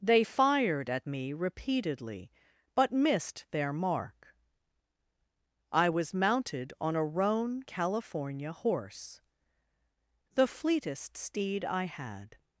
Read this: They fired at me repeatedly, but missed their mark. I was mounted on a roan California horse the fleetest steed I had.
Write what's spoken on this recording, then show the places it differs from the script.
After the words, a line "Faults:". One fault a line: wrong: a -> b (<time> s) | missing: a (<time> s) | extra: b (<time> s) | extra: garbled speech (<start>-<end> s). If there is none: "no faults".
They fired at me repeatedly, but missed their mark. I was mounted on a roan California horse the fleetest steed I had.
Faults:
no faults